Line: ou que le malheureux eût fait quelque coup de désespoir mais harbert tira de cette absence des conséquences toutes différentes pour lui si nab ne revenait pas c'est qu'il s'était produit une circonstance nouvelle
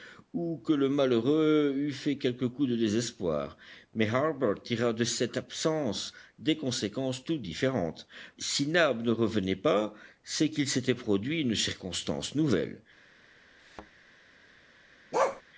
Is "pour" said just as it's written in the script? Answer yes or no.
no